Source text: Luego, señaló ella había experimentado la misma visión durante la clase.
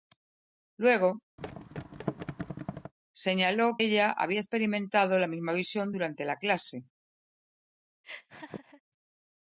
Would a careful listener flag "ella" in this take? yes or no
no